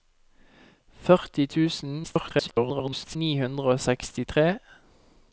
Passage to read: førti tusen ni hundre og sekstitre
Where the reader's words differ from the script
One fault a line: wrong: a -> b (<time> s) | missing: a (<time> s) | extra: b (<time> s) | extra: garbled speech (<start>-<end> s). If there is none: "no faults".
extra: garbled speech (2.0-3.2 s)